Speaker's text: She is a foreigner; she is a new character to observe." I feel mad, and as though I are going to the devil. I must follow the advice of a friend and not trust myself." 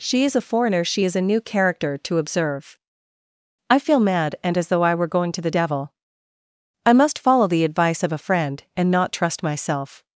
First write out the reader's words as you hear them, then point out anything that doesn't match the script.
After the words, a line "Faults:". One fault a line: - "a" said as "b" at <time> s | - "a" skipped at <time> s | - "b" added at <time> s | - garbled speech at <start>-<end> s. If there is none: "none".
She is a foreigner; she is a new character to observe." I feel mad, and as though I were going to the devil. I must follow the advice of a friend and not trust myself."
Faults:
- "are" said as "were" at 4.9 s